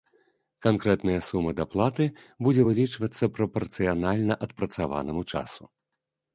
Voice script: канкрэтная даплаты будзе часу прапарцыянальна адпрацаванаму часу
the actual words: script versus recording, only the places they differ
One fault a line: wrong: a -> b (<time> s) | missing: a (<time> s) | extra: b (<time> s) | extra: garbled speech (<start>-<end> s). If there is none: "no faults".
extra: сума (1.2 s)
wrong: часу -> вылічвацца (2.7 s)